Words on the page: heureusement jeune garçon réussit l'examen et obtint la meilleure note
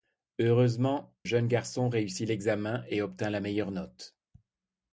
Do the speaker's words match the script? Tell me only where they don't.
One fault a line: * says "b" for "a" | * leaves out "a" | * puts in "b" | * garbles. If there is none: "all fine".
all fine